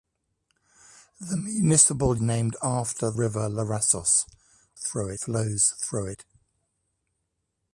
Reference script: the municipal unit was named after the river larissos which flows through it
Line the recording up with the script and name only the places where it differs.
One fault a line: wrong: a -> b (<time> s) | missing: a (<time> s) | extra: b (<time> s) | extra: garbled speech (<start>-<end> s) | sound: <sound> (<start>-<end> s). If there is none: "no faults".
missing: unit was (2.2 s)
missing: the (3.1 s)
wrong: which -> through (4.7 s)